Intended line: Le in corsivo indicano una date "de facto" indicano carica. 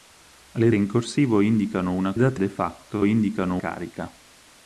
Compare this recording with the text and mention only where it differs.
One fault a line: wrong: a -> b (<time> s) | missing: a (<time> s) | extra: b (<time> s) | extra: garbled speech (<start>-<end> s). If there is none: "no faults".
no faults